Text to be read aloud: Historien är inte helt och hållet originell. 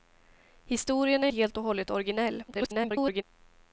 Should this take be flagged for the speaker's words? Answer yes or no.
yes